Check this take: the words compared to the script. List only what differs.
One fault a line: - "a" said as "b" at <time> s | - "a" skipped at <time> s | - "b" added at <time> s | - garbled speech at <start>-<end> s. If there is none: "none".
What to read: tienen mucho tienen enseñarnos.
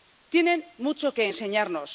- "tienen" said as "que" at 1.1 s